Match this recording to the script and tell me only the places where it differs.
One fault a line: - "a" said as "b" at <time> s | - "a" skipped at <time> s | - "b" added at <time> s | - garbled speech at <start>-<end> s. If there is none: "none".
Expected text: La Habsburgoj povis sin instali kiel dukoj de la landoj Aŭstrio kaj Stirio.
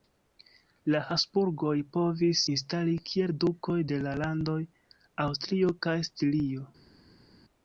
- "sin" skipped at 2.4 s